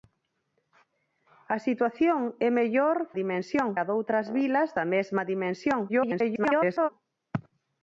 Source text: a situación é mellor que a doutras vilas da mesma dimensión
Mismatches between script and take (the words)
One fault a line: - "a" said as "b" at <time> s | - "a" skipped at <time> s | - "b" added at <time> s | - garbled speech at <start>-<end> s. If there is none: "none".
- "que" said as "dimensión" at 3.2 s
- garbled speech at 5.9-6.9 s